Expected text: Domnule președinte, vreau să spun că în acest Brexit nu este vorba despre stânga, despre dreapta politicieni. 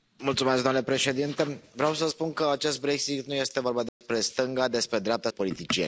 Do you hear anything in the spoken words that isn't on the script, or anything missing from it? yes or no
no